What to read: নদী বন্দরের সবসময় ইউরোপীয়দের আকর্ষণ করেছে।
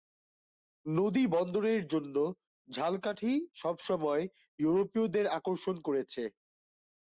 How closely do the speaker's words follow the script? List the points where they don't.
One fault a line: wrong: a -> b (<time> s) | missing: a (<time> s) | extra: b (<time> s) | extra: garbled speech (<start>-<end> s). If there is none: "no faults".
extra: জন্য ঝালকাঠি (1.9 s)